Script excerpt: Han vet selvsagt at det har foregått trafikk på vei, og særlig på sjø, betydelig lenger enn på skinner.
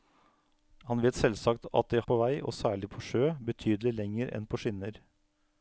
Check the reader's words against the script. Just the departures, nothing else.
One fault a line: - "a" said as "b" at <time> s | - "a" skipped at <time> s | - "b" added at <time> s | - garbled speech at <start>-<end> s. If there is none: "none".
- "har foregått trafikk" skipped at 2.0 s